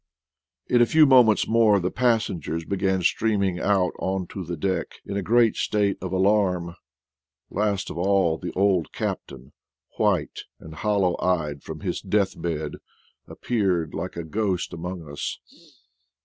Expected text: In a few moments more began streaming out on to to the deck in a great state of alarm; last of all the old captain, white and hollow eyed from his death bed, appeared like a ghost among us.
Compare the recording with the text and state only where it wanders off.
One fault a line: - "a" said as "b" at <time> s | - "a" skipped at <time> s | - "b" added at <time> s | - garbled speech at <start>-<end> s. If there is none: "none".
- "the passengers" added at 1.8 s
- "to" skipped at 4.4 s